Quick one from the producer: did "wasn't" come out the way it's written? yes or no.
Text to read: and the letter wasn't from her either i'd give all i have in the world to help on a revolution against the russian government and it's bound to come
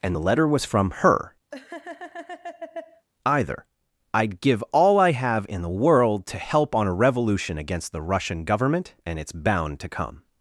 no